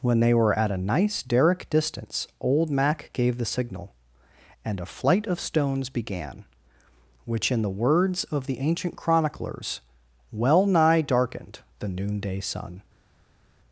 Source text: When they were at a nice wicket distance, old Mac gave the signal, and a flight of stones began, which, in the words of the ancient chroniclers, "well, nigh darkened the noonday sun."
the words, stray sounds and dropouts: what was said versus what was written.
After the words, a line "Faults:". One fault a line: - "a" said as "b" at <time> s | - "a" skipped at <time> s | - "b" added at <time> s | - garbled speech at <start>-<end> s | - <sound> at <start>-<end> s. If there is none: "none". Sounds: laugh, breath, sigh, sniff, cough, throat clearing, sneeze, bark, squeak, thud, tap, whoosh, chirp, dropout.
When they were at a nice derrick distance, old Mac gave the signal, and a flight of stones began, which, in the words of the ancient chroniclers, "well, nigh darkened the noonday sun."
Faults:
- "wicket" said as "derrick" at 1.2 s